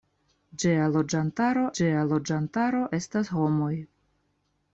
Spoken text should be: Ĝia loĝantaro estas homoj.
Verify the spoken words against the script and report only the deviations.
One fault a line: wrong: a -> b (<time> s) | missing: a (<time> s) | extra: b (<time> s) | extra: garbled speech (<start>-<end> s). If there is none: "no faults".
extra: ĝia loĝantaro (1.8 s)